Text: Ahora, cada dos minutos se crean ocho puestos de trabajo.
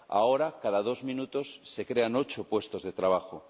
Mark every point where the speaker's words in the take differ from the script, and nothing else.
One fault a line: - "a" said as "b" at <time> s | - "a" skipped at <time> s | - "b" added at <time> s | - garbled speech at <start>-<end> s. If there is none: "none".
none